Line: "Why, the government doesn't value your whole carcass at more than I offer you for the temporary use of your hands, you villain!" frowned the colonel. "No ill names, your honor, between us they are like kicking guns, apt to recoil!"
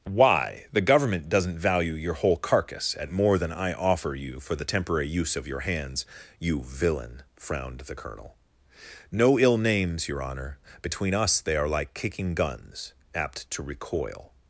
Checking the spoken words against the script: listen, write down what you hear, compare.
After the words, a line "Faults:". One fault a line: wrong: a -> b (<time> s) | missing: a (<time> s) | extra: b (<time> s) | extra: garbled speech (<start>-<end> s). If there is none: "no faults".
"Why, the government doesn't value your whole carcass at more than I offer you for the temporary use of your hands, you villain!" frowned the colonel. "No ill names, your honor, between us they are like kicking guns, apt to recoil!"
Faults:
no faults